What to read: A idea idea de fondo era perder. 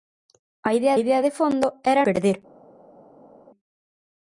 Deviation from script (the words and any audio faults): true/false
false